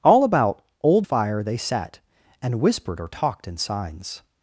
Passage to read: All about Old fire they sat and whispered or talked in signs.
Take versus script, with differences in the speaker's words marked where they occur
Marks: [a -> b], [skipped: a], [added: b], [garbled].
All about Old fire they sat and whispered or talked in signs.